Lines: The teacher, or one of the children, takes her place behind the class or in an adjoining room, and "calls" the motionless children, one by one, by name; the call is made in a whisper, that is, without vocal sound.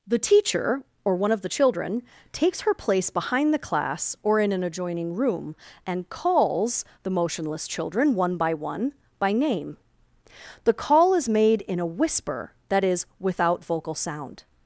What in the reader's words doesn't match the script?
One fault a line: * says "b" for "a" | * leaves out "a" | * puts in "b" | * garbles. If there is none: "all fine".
all fine